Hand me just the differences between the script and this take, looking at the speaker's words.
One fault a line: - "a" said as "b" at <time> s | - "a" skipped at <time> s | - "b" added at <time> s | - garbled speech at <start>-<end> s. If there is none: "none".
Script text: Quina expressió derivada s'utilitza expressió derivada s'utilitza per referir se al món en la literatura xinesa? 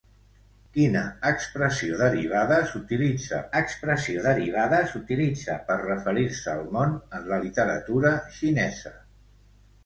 none